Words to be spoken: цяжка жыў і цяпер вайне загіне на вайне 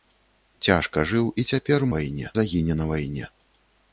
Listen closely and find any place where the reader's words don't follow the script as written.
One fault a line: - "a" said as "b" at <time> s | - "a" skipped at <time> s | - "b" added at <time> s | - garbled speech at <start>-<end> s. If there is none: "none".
none